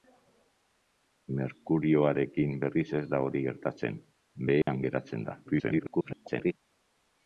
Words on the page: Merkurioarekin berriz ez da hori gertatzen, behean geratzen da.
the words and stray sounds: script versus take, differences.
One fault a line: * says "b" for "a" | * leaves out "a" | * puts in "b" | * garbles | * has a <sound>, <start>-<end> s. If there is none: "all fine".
* has a dropout, 4.6-4.7 s
* garbles